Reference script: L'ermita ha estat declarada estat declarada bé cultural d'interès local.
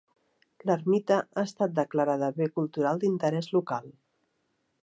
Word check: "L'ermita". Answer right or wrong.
right